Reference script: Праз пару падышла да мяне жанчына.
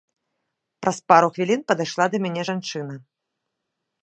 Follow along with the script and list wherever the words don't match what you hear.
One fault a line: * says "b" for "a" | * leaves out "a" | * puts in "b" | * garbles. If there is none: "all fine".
* puts in "хвілін"